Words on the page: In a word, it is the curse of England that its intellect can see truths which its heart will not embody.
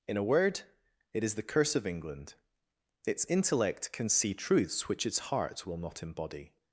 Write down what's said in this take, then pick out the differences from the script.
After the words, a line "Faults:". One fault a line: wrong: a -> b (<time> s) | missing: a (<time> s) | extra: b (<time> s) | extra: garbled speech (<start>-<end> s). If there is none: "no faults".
In a word, it is the curse of England its intellect can see truths which its heart will not embody.
Faults:
missing: that (2.4 s)